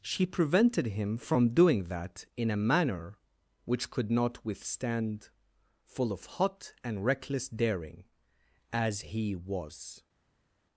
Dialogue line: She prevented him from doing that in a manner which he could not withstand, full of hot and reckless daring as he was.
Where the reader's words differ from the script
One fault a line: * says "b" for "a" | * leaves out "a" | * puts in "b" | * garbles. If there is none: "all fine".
* leaves out "he"